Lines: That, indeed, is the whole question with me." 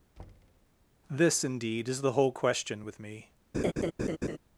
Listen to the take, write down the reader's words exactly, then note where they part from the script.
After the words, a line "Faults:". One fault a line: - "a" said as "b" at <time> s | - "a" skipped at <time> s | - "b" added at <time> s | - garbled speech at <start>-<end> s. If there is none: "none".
This, indeed, is the whole question with me."
Faults:
- "That" said as "This" at 1.1 s